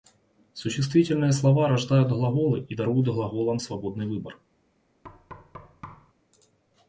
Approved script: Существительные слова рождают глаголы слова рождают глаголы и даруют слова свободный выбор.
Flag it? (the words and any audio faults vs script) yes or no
yes